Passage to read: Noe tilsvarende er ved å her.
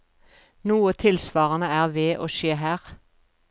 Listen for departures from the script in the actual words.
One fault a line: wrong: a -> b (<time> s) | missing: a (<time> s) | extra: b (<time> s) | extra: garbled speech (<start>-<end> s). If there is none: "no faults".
extra: skje (2.4 s)